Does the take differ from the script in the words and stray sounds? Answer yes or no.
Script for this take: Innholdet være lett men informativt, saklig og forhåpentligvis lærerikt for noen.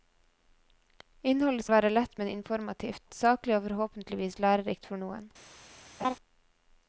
yes